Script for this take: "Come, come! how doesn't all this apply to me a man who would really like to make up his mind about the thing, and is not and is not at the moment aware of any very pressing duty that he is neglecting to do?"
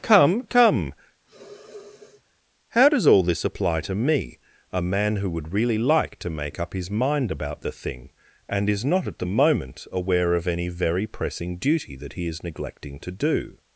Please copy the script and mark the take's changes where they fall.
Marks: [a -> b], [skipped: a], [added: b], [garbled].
"Come, come! how [doesn't -> does] all this apply to me a man who would really like to make up his mind about the thing, and is not [skipped: and is not] at the moment aware of any very pressing duty that he is neglecting to do?"